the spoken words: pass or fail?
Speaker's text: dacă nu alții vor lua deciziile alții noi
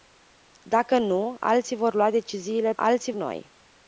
pass